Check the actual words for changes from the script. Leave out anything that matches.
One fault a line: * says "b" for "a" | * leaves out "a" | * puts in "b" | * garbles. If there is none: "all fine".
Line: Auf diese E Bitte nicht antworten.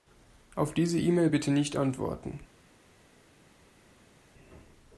* puts in "Mail"